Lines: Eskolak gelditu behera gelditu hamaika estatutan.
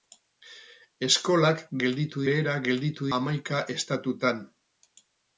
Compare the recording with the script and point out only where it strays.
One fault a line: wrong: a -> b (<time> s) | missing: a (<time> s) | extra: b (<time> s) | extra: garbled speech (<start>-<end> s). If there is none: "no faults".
no faults